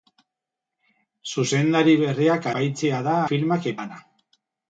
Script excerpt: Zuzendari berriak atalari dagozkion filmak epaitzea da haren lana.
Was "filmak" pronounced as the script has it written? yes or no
no